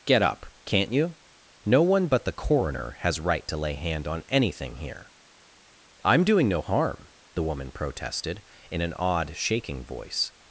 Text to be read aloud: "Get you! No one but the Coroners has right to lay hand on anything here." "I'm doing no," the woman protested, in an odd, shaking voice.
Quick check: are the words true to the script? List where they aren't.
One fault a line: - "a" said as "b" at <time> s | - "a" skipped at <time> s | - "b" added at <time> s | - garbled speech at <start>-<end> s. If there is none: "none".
- "up can't" added at 0.2 s
- "Coroners" said as "Coroner" at 2.3 s
- "harm" added at 6.6 s